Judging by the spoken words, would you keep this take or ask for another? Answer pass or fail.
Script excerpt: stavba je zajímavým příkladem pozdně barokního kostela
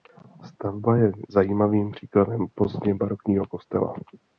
pass